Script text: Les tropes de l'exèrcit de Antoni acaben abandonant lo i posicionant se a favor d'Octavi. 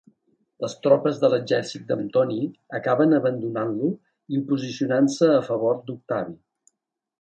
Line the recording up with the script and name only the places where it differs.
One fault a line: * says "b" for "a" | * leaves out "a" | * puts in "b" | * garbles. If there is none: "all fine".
all fine